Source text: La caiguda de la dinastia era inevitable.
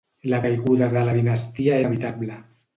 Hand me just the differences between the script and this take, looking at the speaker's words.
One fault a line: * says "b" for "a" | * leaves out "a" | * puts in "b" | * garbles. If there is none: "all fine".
* leaves out "era"